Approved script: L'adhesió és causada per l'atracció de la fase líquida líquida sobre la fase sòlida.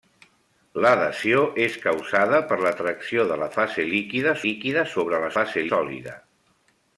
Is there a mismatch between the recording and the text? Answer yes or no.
no